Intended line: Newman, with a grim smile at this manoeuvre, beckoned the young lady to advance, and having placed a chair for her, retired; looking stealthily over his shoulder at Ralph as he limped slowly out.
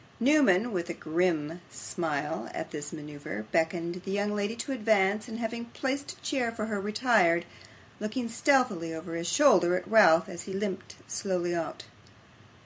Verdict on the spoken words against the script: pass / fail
pass